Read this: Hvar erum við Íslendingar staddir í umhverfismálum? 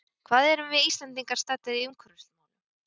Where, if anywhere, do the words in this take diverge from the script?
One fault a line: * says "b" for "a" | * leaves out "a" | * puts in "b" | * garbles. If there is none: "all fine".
all fine